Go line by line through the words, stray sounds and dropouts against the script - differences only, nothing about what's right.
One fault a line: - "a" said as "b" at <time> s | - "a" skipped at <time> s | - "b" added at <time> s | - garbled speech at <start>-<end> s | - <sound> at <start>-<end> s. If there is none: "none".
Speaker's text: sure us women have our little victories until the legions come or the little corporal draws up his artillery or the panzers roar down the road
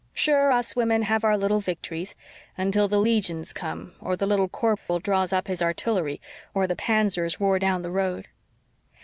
- dropout at 4.8-4.9 s